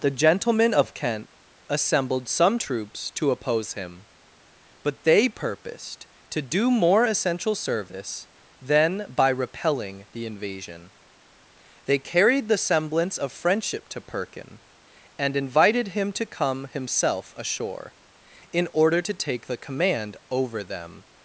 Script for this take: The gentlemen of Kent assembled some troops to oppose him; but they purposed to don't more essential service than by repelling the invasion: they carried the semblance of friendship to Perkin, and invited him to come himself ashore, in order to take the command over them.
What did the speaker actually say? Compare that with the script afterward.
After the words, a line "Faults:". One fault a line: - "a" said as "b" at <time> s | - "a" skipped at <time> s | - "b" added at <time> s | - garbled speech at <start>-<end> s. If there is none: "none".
The gentlemen of Kent assembled some troops to oppose him; but they purposed to do more essential service than by repelling the invasion: they carried the semblance of friendship to Perkin, and invited him to come himself ashore, in order to take the command over them.
Faults:
- "don't" said as "do" at 6.4 s